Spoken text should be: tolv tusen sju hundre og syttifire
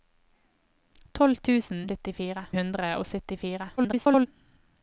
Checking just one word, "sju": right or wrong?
wrong